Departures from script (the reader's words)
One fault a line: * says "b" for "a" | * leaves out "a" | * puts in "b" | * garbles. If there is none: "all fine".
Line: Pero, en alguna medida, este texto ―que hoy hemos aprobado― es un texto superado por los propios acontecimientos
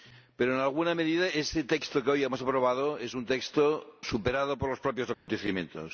all fine